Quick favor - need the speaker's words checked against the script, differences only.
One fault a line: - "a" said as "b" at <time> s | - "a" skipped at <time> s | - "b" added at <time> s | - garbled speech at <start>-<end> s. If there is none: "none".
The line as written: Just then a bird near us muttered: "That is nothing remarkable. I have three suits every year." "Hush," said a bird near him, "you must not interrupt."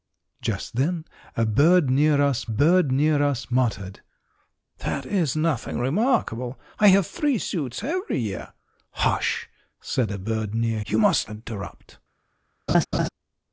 - "bird near us" added at 2.5 s
- "him" skipped at 10.8 s
- "not" skipped at 11.3 s